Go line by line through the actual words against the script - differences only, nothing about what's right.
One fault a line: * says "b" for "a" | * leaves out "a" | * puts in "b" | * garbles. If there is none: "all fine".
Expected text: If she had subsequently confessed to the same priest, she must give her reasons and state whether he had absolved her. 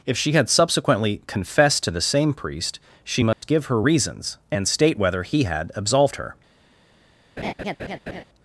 all fine